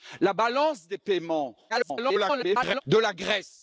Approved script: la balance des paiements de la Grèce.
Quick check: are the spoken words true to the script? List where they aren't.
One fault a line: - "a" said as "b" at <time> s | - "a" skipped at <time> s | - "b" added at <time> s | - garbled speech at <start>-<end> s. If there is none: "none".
- garbled speech at 1.7-2.8 s